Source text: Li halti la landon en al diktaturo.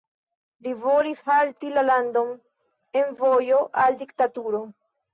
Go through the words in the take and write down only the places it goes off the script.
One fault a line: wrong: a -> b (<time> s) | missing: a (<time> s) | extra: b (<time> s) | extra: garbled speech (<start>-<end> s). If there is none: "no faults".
extra: volis (0.8 s)
extra: vojo (3.2 s)